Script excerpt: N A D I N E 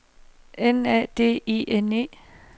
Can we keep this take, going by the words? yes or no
yes